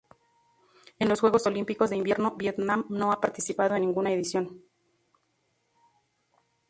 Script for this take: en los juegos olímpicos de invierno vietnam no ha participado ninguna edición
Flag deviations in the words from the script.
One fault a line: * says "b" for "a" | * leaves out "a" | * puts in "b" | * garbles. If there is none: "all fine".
all fine